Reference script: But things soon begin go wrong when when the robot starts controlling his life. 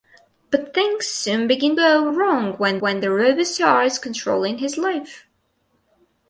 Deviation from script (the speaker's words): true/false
false